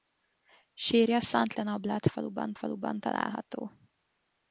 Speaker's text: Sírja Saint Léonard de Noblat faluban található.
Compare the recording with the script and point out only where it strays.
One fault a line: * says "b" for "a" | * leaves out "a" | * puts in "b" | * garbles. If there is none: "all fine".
* leaves out "Léonard"
* puts in "faluban"